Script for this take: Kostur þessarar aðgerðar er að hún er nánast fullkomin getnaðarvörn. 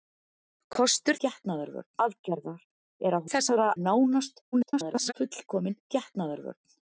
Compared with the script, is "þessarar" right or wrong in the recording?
wrong